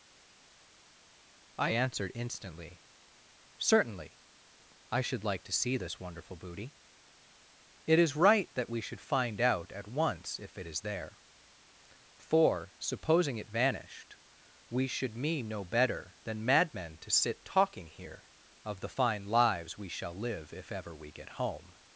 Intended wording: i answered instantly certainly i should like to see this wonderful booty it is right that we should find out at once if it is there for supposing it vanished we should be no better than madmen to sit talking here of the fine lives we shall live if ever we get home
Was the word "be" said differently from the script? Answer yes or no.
yes